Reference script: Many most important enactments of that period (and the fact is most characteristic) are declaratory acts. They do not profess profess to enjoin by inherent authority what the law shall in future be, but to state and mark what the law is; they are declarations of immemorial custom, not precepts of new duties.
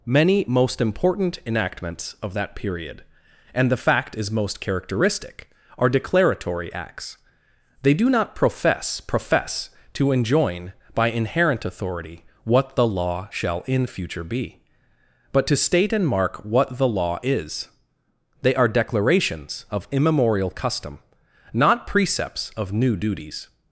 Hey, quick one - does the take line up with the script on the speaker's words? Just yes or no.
yes